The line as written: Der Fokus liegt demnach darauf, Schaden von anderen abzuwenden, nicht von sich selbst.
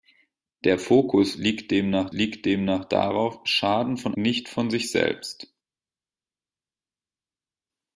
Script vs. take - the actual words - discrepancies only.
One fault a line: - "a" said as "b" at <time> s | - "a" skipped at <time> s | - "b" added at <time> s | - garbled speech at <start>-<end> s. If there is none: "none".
- "liegt demnach" added at 2.1 s
- "anderen abzuwenden" skipped at 4.2 s